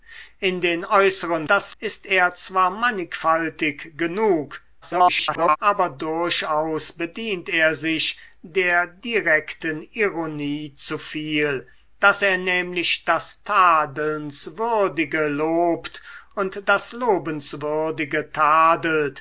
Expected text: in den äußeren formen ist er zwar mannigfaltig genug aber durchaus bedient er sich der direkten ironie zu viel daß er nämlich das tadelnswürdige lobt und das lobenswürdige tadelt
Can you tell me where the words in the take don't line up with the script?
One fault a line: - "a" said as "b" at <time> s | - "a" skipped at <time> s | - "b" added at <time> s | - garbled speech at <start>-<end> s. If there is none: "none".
- "formen" said as "das" at 1.5 s
- garbled speech at 4.8-5.6 s